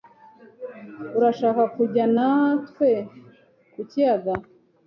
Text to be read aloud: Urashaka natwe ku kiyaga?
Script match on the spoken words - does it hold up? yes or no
no